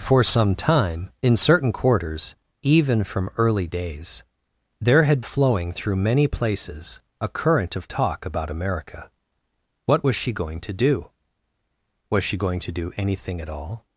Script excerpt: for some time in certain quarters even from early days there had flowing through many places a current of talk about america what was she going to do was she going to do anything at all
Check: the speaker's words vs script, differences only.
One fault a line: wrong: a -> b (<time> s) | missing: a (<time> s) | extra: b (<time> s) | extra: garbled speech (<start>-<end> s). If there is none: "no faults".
no faults